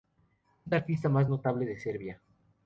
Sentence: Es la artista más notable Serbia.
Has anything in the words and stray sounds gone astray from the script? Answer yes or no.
yes